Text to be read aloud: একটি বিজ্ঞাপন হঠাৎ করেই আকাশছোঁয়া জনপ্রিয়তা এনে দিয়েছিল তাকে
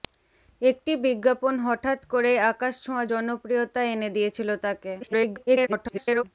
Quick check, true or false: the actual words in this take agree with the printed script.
false